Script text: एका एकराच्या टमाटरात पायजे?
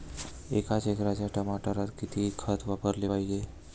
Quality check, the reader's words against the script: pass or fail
fail